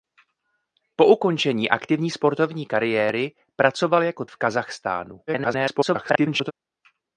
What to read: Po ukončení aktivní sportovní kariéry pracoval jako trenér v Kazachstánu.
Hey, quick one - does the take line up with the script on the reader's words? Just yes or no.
no